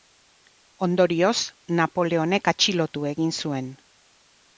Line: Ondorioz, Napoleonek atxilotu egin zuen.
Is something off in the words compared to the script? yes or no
no